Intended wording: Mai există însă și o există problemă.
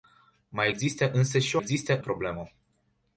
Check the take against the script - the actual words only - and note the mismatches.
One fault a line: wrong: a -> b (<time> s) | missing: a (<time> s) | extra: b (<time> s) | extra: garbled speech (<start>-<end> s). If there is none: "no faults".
no faults